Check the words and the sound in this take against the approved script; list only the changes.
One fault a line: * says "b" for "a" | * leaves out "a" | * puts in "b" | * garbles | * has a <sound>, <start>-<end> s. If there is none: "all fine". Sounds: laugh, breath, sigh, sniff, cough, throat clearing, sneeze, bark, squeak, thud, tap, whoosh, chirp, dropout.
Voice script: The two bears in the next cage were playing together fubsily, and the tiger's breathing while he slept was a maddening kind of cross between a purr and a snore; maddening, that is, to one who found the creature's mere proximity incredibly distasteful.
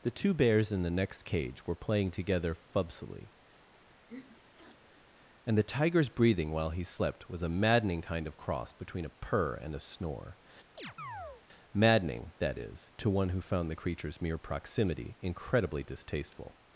* has a sniff, 3.6-5.1 s
* has a chirp, 10.8-11.4 s